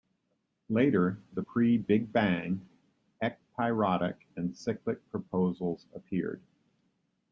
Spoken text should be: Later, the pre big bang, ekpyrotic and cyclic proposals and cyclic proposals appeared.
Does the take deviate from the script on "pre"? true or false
false